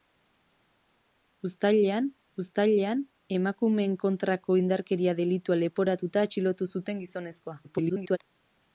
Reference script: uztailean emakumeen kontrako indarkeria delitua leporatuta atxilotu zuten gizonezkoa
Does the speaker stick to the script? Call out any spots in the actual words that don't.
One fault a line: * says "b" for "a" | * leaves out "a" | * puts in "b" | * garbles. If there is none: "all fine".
* puts in "uztailean"
* garbles